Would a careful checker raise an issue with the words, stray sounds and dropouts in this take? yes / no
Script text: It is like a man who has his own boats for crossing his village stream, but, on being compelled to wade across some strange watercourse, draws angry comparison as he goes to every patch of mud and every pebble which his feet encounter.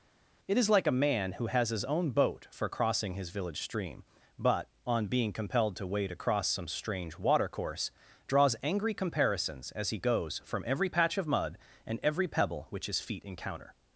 yes